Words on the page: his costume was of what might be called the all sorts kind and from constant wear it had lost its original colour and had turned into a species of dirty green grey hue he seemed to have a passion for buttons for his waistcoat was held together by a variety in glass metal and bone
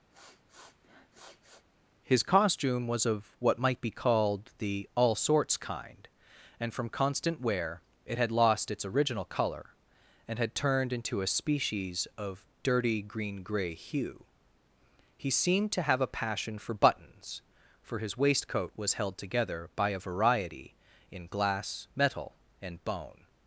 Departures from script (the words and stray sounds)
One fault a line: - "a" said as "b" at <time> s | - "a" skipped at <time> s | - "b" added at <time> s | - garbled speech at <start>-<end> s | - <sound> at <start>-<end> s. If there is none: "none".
- sniff at 0.1-1.7 s